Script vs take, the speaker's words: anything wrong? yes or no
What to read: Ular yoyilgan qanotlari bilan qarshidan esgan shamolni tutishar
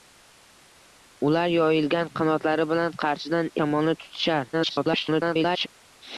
yes